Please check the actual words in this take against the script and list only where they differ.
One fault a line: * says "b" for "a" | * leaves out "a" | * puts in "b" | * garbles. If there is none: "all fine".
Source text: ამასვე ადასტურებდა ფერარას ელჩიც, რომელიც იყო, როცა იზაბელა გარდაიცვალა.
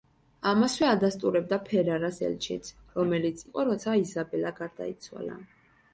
all fine